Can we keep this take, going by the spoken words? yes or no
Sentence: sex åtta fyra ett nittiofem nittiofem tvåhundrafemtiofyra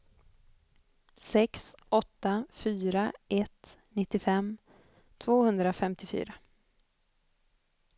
no